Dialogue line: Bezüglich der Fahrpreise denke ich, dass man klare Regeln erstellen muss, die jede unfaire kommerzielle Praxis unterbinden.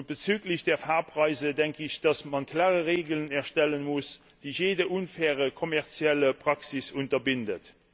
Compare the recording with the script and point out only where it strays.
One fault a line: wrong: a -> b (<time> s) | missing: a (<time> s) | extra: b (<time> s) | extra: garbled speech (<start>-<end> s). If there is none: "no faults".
no faults